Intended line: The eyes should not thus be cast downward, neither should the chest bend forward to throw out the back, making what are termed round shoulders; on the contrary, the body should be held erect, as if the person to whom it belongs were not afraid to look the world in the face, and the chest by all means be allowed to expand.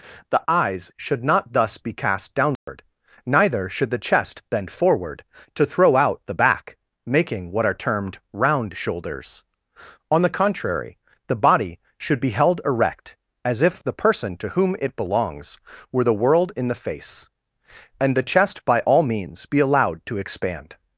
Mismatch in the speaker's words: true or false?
true